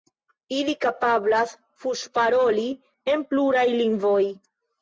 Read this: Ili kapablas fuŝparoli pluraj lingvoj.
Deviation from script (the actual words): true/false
true